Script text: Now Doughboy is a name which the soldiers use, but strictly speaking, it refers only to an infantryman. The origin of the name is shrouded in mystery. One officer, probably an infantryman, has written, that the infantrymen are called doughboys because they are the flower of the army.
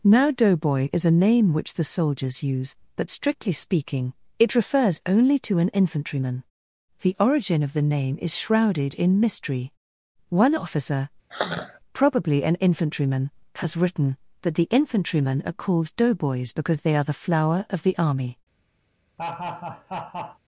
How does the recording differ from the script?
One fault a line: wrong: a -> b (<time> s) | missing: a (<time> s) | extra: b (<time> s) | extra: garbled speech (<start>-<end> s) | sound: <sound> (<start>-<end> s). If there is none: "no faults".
sound: sigh (11.3-11.8 s)
sound: laugh (19.2-20.4 s)